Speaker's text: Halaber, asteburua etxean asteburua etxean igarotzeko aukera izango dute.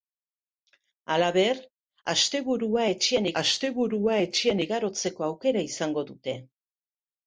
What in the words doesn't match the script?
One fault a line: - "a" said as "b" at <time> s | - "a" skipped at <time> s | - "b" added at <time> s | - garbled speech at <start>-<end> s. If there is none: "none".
none